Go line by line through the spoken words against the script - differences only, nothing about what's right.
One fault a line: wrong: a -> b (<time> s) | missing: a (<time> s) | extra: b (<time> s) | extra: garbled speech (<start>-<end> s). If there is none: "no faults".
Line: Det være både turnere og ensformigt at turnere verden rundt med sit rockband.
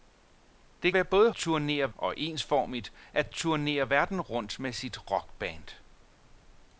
no faults